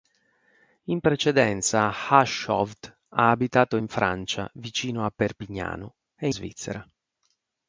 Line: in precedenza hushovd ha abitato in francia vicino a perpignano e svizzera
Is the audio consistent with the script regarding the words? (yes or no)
yes